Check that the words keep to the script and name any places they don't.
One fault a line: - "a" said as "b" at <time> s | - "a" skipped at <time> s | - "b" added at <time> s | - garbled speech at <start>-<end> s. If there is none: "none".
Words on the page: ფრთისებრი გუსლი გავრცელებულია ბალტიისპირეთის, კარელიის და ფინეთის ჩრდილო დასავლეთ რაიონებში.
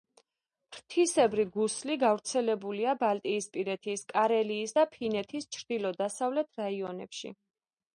none